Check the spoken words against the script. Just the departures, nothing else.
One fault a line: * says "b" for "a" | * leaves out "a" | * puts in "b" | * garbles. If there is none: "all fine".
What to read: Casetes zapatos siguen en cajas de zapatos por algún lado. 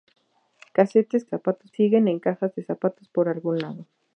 all fine